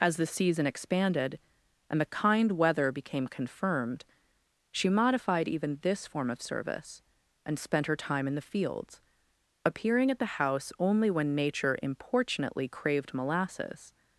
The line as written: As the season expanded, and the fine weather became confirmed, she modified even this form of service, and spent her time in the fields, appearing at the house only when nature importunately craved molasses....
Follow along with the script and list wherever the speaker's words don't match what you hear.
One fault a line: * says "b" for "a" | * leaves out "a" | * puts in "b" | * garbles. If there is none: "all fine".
* says "kind" for "fine"